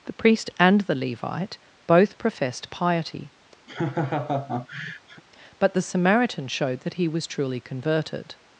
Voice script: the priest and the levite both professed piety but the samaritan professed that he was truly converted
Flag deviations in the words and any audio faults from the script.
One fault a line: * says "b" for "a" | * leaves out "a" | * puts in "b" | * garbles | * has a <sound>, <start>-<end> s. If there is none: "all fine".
* has a laugh, 3.7-5.2 s
* says "showed" for "professed"